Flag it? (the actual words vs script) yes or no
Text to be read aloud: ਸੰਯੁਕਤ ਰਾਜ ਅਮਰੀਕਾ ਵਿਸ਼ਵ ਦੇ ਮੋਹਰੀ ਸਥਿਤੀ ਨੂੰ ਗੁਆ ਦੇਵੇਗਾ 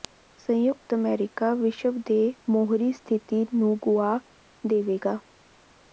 yes